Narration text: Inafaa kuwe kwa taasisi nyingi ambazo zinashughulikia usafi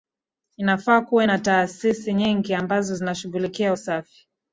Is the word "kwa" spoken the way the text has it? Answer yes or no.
no